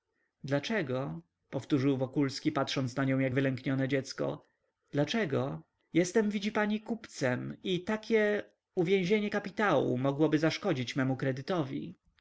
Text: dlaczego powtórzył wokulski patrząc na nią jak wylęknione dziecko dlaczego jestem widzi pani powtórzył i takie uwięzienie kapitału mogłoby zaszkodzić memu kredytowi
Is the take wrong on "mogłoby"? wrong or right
right